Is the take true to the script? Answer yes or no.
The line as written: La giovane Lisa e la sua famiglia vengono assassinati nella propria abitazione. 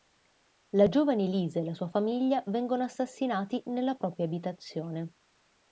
yes